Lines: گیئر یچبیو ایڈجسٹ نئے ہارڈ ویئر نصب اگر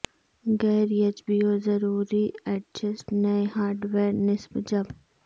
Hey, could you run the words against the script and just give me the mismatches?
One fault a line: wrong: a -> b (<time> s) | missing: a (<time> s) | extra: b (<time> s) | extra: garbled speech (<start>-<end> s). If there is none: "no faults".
extra: ضروری (1.6 s)
wrong: اگر -> جب (4.7 s)